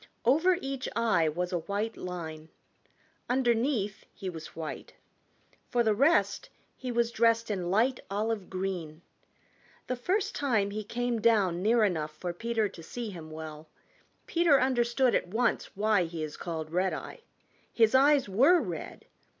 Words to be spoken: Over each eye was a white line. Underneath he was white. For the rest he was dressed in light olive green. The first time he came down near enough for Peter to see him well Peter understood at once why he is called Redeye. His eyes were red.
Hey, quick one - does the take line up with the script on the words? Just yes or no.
yes